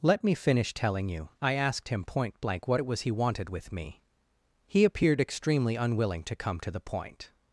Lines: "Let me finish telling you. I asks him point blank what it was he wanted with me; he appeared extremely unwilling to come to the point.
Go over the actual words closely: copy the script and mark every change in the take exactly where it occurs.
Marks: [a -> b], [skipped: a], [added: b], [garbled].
"Let me finish telling you. I [asks -> asked] him point blank what it was he wanted with me; he appeared extremely unwilling to come to the point.